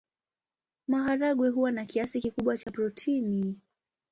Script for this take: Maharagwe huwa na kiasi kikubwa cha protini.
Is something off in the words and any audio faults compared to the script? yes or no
yes